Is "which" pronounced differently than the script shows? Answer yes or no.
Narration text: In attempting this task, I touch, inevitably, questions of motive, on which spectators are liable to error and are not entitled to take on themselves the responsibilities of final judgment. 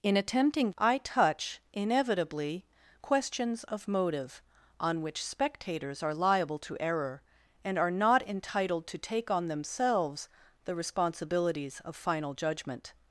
no